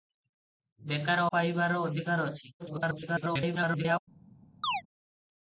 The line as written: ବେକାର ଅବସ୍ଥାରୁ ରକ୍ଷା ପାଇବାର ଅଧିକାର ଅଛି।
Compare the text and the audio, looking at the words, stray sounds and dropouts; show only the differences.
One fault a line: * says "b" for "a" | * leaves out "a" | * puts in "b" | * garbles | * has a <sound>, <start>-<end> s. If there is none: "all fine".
* leaves out "ଅବସ୍ଥାରୁ ରକ୍ଷା"
* garbles
* has a chirp, 4.6-4.8 s